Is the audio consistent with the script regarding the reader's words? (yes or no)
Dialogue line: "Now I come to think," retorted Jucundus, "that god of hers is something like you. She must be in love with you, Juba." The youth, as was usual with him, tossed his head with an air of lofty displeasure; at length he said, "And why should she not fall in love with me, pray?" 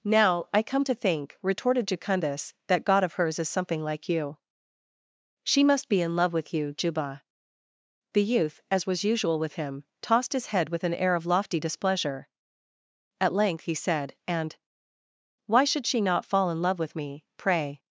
yes